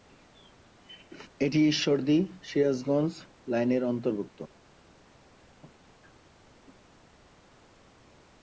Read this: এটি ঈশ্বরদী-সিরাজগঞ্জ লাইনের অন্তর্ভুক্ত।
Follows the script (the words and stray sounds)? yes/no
yes